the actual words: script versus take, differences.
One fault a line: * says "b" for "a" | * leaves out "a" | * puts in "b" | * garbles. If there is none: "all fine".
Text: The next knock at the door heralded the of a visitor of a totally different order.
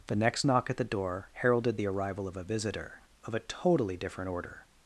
* puts in "arrival"